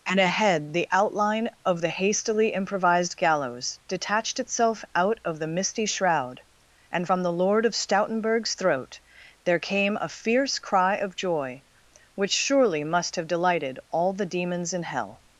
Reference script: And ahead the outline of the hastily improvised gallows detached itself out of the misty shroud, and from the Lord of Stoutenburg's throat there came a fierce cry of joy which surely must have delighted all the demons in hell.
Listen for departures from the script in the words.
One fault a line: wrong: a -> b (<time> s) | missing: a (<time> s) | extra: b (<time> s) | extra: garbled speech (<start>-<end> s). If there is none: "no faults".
no faults